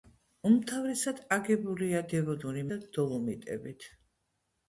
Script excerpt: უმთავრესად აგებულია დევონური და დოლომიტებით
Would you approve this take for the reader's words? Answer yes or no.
yes